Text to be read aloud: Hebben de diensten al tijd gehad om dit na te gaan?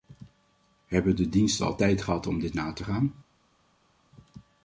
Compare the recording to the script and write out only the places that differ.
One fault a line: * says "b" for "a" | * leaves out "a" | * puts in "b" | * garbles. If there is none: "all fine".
all fine